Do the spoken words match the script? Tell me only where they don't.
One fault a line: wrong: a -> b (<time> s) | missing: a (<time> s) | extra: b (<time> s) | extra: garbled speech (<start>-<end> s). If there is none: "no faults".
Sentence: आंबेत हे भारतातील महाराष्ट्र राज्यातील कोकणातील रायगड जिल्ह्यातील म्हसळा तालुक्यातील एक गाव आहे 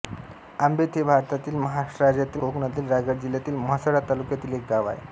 no faults